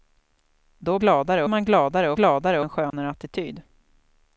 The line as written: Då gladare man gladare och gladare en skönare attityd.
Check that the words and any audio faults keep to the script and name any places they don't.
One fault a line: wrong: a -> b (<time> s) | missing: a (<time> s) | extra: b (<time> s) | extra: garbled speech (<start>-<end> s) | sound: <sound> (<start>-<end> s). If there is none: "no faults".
sound: dropout (2.9-2.9 s)